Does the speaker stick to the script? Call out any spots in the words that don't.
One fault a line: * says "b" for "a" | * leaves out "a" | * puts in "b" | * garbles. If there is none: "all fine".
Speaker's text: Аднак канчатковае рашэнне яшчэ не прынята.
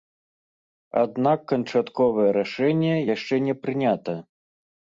all fine